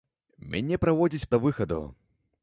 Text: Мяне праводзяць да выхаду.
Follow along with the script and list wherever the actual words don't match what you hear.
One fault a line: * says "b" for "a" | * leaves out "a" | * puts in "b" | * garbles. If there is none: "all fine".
all fine